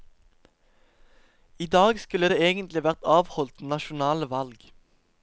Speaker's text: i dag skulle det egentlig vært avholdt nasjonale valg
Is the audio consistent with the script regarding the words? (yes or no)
yes